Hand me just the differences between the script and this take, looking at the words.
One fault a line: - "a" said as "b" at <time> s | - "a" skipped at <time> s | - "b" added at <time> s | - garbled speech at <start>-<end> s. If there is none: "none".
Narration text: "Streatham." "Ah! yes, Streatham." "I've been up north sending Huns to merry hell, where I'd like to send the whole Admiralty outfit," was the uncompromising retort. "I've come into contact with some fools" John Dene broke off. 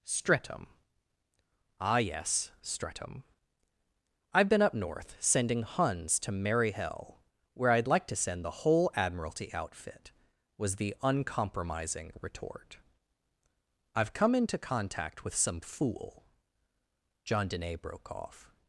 - "fools" said as "fool" at 15.6 s